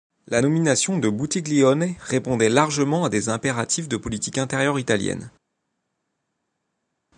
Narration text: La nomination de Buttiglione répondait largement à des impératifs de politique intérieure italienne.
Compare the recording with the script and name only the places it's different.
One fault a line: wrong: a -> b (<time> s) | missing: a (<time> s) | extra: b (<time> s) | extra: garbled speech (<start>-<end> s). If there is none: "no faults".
no faults